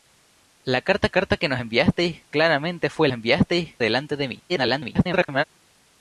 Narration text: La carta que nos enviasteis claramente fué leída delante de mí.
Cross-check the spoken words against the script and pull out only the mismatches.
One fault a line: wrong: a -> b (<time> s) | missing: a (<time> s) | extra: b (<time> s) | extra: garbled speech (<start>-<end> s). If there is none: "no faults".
extra: carta (1.1 s)
wrong: leída -> enviasteis (3.1 s)
extra: garbled speech (4.5-5.4 s)